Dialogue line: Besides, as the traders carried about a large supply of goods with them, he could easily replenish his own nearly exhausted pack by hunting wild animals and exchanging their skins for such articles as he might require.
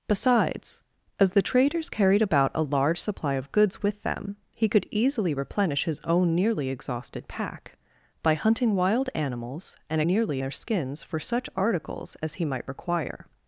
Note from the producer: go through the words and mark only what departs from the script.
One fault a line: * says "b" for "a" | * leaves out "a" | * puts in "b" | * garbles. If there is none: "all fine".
* says "nearly" for "exchanging"